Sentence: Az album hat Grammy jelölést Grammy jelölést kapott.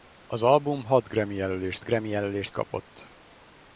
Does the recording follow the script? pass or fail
pass